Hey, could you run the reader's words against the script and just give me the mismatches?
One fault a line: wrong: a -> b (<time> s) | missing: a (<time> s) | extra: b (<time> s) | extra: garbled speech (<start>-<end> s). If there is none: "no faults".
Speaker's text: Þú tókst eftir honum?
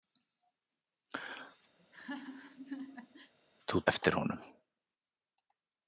missing: tókst (3.8 s)